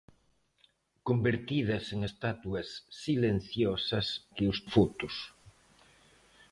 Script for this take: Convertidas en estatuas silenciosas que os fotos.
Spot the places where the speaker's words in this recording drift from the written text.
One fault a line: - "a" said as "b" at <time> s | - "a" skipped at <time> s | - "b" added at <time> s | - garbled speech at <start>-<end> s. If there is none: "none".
none